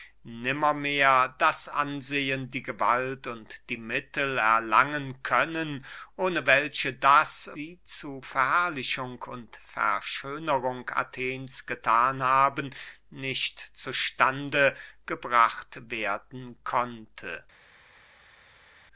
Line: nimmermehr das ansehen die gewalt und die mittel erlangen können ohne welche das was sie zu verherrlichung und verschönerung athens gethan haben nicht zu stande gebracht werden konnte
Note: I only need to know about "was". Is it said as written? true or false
false